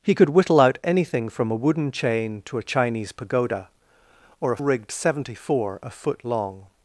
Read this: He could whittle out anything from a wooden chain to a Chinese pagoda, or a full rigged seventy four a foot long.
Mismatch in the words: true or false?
true